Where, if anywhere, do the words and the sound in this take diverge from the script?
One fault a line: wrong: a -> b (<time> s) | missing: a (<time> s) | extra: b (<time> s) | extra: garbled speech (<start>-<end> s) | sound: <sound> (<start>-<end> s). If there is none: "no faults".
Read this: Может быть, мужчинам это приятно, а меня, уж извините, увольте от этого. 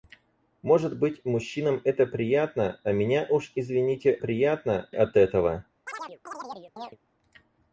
wrong: увольте -> приятно (4.2 s)
sound: chirp (5.9-7.0 s)